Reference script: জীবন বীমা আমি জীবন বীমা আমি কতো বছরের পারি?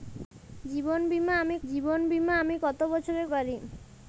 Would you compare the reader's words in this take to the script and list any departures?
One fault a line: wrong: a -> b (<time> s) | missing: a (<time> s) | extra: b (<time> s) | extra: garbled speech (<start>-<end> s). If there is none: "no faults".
no faults